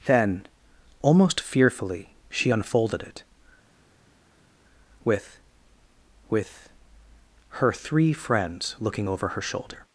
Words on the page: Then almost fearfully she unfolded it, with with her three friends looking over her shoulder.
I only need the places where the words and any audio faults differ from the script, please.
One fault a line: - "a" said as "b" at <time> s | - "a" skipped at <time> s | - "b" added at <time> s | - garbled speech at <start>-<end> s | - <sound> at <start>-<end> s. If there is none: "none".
none